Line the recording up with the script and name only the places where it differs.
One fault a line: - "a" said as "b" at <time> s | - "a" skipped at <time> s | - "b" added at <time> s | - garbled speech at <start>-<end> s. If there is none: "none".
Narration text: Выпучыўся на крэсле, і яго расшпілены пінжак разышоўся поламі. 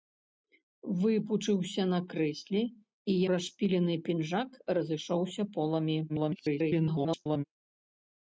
- "яго" skipped at 3.1 s
- garbled speech at 6.1-7.4 s